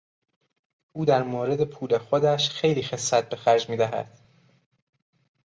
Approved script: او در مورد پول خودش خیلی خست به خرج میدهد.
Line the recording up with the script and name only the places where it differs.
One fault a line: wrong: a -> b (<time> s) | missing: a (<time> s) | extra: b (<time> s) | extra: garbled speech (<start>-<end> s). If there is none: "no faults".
no faults